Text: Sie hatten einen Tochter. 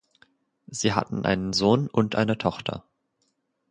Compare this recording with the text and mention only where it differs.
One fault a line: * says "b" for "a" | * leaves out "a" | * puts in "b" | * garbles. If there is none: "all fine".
* puts in "Sohn und eine"